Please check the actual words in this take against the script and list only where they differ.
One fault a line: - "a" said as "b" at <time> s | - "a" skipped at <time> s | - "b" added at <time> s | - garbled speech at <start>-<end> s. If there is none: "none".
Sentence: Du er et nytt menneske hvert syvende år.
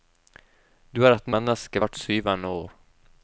- "nytt" skipped at 1.3 s